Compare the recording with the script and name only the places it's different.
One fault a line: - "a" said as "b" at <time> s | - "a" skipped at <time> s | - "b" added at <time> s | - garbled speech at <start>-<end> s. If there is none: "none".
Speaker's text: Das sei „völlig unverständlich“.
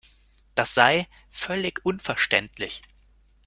none